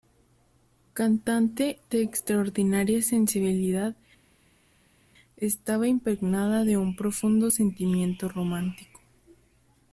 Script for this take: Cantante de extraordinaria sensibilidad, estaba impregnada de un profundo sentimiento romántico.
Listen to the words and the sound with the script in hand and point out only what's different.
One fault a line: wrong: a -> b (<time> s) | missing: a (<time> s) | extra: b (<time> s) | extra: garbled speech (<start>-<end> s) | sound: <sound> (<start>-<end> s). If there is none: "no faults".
no faults